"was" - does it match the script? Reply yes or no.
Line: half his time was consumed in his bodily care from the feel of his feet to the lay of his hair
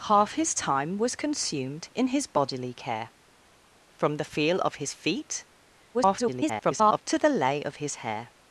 yes